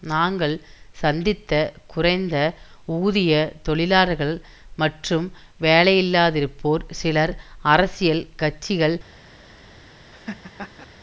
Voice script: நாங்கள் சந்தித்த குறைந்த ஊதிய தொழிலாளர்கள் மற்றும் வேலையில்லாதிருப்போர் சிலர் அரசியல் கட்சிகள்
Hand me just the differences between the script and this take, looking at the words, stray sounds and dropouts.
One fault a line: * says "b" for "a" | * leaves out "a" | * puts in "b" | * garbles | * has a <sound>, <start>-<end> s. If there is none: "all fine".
* has a laugh, 10.1-10.9 s